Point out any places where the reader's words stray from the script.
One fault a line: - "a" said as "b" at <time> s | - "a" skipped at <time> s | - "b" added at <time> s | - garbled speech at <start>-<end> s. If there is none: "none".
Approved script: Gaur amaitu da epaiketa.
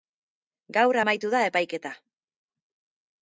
none